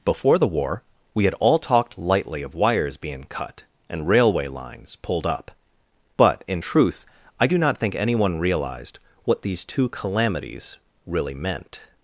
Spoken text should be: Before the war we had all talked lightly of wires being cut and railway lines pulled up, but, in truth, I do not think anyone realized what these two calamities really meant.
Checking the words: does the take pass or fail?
pass